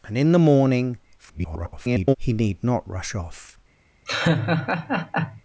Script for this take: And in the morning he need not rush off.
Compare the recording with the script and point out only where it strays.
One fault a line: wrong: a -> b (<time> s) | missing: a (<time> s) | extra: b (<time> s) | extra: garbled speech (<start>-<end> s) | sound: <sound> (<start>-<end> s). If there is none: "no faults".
extra: garbled speech (1.2-2.2 s)
sound: laugh (4.1-5.4 s)